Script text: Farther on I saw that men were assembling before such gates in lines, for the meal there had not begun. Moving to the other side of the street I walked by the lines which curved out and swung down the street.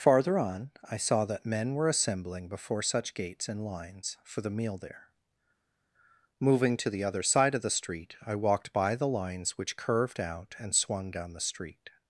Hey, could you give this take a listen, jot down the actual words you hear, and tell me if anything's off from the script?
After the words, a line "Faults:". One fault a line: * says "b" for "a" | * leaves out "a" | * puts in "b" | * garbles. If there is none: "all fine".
Farther on I saw that men were assembling before such gates in lines, for the meal there. Moving to the other side of the street I walked by the lines which curved out and swung down the street.
Faults:
* leaves out "had not begun"